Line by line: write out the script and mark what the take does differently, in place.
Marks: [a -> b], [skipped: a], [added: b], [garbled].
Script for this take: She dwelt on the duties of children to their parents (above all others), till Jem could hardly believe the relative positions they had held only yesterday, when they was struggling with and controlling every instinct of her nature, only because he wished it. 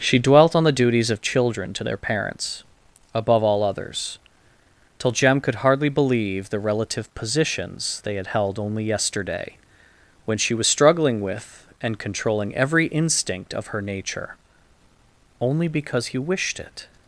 She dwelt on the duties of children to their parents (above all others), till Jem could hardly believe the relative positions they had held only yesterday, when [they -> she] was struggling with and controlling every instinct of her nature, only because he wished it.